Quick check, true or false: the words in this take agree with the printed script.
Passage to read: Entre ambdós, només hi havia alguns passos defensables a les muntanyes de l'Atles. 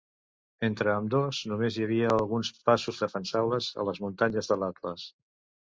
true